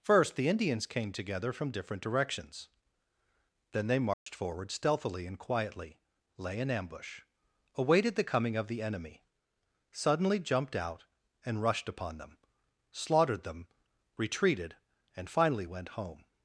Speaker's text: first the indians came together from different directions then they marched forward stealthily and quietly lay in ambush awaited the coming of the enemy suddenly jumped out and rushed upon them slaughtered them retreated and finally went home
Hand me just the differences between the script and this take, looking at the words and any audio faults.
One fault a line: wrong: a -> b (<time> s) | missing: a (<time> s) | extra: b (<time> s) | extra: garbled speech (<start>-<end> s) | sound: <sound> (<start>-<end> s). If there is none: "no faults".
sound: dropout (4.1-4.3 s)